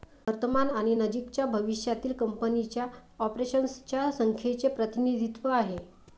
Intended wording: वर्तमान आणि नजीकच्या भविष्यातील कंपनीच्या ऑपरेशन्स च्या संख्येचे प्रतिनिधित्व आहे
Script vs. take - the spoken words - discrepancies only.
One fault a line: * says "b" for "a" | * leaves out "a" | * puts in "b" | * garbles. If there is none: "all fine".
all fine